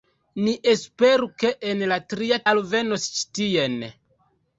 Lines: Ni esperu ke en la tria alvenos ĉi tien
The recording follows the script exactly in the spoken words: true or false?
true